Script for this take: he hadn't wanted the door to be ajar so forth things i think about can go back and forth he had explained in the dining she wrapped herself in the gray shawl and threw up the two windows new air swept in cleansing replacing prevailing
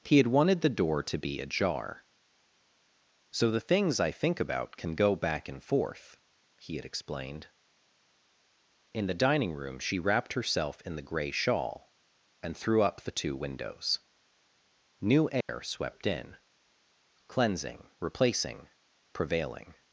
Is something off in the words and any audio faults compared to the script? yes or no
yes